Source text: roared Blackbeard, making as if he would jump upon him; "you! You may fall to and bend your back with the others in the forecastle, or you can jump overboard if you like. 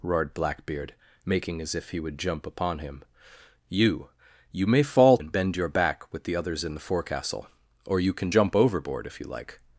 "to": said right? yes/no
no